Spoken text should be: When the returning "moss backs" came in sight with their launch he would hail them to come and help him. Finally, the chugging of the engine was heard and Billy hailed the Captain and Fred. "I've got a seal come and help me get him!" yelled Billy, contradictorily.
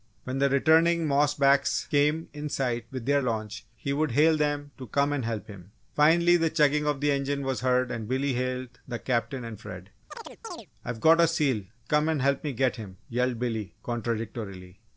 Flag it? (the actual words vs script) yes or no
no